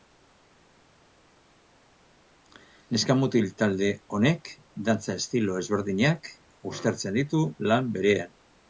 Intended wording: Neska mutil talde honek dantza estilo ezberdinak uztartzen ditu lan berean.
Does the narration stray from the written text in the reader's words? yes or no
no